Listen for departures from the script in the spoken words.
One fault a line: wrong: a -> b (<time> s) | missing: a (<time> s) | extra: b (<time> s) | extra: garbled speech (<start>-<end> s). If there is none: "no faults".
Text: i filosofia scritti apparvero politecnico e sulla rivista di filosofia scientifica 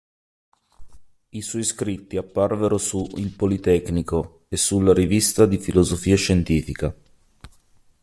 wrong: filosofia -> suoi (1.4 s)
extra: su il (2.8 s)